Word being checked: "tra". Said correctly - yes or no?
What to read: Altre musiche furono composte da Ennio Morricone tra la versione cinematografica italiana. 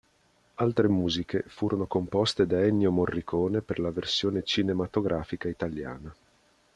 no